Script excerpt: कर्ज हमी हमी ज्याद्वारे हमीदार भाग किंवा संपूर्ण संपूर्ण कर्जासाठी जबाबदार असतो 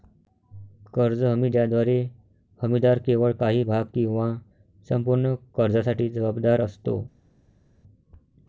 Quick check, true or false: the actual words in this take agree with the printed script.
false